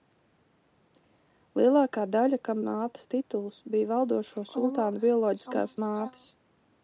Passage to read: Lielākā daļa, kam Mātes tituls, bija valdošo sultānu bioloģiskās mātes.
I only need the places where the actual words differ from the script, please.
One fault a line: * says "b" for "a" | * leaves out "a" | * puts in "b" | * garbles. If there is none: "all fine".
all fine